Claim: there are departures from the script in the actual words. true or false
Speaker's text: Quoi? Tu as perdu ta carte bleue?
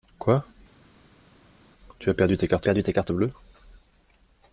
true